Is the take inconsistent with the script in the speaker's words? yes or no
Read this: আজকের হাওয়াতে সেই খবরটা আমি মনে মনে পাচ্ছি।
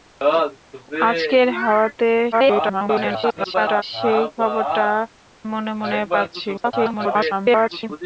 yes